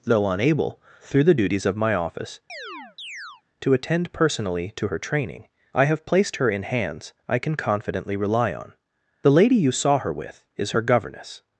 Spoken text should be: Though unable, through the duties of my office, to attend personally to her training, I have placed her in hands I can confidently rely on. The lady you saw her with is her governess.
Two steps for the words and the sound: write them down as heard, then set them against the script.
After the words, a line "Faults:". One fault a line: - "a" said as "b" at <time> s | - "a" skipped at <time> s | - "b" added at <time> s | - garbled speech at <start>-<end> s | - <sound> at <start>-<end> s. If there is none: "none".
Though unable, through the duties of my office, to attend personally to her training, I have placed her in hands I can confidently rely on. The lady you saw her with is her governess.
Faults:
- chirp at 2.5-3.4 s